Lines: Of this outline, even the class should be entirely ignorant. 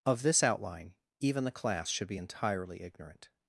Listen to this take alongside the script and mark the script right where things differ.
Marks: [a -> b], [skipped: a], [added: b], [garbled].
Of this outline, even the class should be entirely ignorant.